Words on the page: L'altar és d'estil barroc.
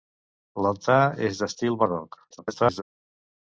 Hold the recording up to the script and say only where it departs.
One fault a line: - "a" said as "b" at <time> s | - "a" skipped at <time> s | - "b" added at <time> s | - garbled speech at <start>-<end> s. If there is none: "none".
- garbled speech at 2.3-2.8 s